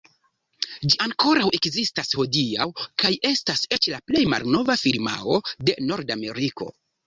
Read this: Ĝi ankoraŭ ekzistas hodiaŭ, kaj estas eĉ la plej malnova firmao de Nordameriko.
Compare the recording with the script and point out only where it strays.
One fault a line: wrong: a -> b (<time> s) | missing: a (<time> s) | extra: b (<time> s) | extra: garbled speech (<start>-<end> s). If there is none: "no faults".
no faults